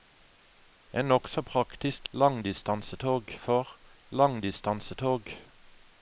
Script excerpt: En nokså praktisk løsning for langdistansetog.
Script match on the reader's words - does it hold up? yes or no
no